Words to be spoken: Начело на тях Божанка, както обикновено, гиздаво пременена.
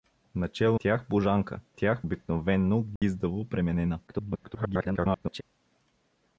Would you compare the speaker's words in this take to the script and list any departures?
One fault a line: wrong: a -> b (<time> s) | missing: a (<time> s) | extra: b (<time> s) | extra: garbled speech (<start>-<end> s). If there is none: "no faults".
missing: на (0.8 s)
wrong: както -> тях (1.7 s)
extra: garbled speech (4.1-5.4 s)